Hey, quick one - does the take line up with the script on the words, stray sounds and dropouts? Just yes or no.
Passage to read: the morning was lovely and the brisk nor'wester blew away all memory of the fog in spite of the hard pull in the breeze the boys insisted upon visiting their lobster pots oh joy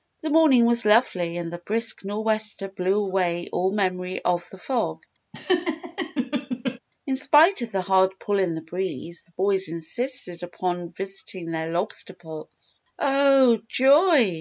no